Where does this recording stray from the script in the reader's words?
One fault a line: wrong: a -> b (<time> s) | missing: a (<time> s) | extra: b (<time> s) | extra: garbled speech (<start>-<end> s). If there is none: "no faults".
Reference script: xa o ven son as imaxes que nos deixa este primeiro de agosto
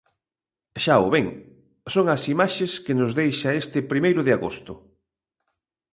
no faults